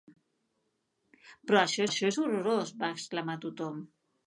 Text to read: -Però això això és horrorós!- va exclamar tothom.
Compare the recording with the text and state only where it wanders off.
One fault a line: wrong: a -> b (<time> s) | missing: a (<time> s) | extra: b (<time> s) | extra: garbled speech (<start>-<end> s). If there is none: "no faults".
no faults